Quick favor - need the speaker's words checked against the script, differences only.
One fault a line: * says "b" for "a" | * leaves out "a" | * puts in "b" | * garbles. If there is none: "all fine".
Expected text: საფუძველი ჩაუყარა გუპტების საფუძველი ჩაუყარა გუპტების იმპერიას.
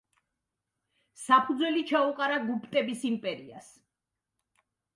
* leaves out "საფუძველი ჩაუყარა გუპტების"